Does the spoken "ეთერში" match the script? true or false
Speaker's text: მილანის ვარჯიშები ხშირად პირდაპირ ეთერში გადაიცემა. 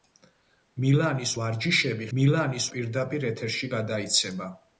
true